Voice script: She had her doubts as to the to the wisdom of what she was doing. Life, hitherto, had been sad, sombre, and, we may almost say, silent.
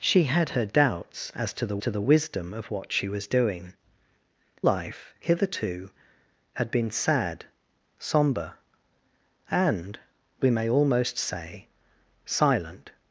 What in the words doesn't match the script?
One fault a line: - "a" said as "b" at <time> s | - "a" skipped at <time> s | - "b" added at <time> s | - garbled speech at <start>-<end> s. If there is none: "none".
none